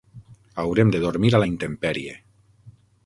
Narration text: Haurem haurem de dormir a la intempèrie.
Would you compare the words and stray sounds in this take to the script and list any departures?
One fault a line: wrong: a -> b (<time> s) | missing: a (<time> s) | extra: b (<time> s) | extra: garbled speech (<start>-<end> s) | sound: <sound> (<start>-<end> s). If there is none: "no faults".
missing: haurem (0.9 s)